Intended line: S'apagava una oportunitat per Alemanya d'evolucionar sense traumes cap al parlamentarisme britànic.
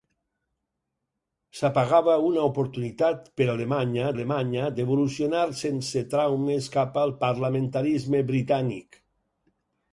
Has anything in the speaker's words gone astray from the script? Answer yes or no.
yes